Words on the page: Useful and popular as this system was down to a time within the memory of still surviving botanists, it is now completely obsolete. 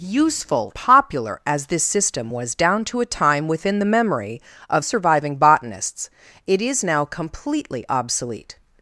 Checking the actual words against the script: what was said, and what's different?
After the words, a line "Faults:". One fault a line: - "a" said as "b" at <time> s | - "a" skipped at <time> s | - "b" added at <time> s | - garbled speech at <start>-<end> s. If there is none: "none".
Useful popular as this system was down to a time within the memory of surviving botanists, it is now completely obsolete.
Faults:
- "and" skipped at 0.7 s
- "still" skipped at 4.8 s